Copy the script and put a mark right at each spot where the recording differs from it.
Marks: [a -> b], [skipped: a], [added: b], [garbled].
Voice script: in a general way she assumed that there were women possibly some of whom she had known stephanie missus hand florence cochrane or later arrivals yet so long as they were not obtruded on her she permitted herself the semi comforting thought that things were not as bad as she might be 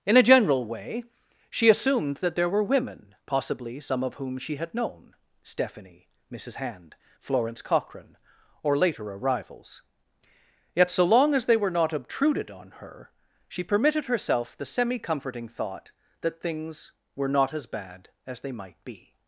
in a general way she assumed that there were women possibly some of whom she had known stephanie missus hand florence cochrane or later arrivals yet so long as they were not obtruded on her she permitted herself the semi comforting thought that things were not as bad as [she -> they] might be